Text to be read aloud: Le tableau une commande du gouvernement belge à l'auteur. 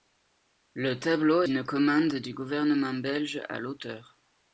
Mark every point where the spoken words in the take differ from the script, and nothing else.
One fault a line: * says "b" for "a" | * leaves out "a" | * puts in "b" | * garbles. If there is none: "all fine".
all fine